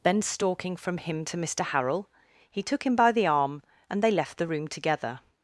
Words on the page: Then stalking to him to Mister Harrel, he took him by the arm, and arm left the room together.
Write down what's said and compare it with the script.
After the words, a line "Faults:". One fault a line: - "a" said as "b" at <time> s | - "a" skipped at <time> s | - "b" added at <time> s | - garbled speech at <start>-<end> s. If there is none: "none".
Then stalking from him to Mister Harrel, he took him by the arm, and they left the room together.
Faults:
- "to" said as "from" at 0.8 s
- "arm" said as "they" at 4.0 s